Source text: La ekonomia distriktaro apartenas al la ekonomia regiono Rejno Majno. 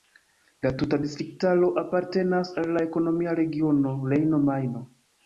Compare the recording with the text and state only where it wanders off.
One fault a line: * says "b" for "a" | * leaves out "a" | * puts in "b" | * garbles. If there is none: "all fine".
* says "tuta" for "ekonomia"